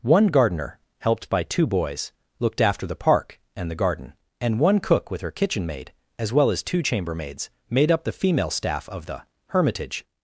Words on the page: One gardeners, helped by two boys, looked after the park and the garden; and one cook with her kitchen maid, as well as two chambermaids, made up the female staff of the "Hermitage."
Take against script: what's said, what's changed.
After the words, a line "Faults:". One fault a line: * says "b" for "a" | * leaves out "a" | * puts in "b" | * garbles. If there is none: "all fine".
One gardener, helped by two boys, looked after the park and the garden; and one cook with her kitchen maid, as well as two chambermaids, made up the female staff of the "Hermitage."
Faults:
* says "gardener" for "gardeners"